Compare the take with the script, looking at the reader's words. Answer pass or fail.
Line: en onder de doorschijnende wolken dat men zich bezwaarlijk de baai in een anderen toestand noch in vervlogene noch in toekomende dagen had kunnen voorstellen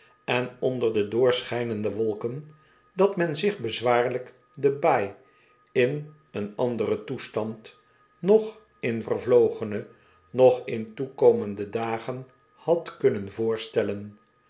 pass